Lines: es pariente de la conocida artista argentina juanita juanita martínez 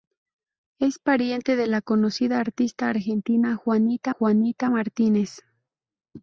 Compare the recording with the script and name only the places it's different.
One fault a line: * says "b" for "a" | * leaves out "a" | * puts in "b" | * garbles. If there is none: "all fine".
all fine